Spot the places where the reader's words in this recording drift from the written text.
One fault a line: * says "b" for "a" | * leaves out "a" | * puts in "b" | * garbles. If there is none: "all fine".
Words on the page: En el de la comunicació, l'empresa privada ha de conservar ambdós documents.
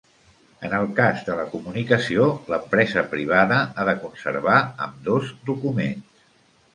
* puts in "cas"